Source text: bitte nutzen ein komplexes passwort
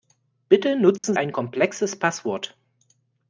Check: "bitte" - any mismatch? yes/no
no